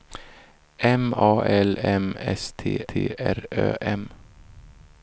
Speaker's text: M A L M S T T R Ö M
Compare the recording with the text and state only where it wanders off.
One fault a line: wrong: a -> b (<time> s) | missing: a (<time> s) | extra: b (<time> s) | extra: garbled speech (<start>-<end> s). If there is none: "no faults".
no faults